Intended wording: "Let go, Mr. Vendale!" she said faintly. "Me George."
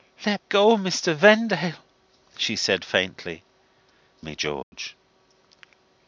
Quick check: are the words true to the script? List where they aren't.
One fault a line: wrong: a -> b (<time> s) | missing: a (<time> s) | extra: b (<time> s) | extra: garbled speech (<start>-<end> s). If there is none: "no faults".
no faults